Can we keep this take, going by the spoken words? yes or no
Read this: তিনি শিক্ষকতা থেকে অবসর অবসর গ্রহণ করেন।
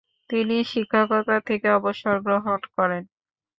no